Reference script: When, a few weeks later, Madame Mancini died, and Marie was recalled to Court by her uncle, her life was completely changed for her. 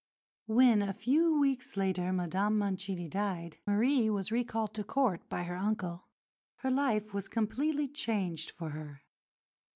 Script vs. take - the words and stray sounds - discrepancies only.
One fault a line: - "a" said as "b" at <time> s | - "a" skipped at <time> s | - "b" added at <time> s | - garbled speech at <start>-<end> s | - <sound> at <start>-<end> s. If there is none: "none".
- "and" skipped at 3.6 s